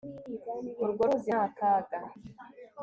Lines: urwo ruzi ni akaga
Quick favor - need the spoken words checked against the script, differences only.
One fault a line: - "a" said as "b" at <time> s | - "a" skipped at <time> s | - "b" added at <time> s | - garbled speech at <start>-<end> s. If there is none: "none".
none